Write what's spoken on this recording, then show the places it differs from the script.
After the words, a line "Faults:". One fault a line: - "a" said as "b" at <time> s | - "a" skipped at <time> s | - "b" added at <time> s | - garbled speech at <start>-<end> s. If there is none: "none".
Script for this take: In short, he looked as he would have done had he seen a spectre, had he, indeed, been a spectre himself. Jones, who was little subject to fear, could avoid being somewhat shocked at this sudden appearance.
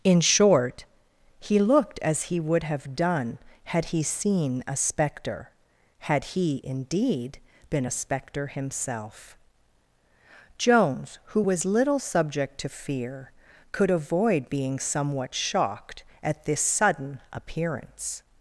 In short, he looked as he would have done had he seen a spectre, had he, indeed, been a spectre himself. Jones, who was little subject to fear, could avoid being somewhat shocked at this sudden appearance.
Faults:
none